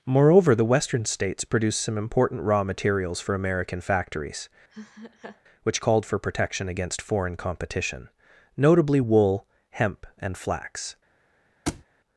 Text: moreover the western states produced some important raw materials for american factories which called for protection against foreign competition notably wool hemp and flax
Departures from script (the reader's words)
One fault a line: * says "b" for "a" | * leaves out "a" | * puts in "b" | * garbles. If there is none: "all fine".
all fine